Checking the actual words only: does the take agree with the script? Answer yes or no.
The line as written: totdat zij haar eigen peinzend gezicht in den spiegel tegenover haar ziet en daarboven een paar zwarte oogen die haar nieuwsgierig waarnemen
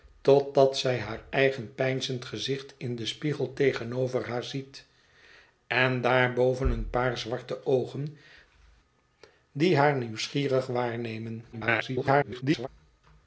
no